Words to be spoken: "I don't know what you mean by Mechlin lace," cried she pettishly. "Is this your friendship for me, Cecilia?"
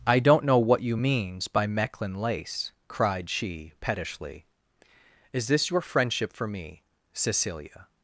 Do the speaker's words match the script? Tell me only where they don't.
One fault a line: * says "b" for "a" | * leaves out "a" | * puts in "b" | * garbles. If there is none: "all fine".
* says "means" for "mean"